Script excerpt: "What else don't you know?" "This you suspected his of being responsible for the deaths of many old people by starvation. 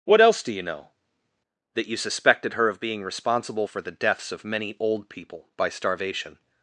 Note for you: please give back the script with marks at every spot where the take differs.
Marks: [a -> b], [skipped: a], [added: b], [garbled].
"What else [don't -> do] you know?" ["This -> That] you suspected [his -> her] of being responsible for the deaths of many old people by starvation.